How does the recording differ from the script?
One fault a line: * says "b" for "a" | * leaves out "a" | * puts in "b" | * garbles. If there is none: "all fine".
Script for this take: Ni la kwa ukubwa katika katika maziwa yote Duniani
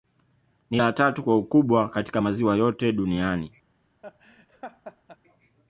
* puts in "tatu"
* leaves out "katika"